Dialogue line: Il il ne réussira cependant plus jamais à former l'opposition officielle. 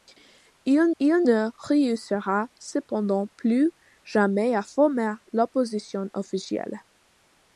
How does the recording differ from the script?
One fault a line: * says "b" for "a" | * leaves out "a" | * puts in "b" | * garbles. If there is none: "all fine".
all fine